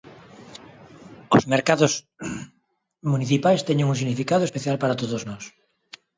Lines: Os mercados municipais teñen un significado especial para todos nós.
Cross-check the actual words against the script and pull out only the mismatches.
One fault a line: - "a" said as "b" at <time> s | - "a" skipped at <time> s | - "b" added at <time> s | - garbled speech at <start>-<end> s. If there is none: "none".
none